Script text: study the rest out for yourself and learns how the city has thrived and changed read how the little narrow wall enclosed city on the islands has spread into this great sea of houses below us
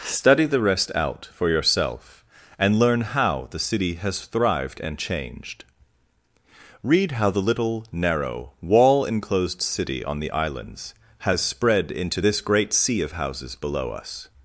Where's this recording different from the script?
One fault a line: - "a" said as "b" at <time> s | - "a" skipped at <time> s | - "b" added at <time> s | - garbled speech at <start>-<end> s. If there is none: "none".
- "learns" said as "learn" at 2.8 s